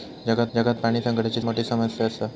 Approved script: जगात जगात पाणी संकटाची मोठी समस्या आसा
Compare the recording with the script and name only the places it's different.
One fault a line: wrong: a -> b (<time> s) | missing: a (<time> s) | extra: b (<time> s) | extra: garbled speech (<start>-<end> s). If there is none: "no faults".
no faults